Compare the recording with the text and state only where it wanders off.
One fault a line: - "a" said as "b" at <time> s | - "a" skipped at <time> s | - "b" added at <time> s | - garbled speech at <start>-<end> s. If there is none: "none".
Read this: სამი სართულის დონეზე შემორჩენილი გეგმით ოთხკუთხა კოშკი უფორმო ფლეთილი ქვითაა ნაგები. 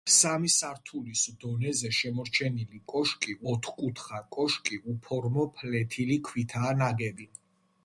- "გეგმით" said as "კოშკი" at 3.0 s